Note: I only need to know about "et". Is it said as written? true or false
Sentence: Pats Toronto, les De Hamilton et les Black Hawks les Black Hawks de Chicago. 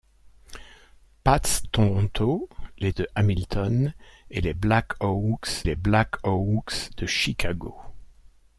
true